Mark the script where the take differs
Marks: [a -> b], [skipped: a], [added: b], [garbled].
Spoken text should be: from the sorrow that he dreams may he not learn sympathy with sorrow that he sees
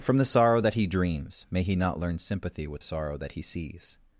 from the sorrow that he dreams may he not learn sympathy with sorrow that he sees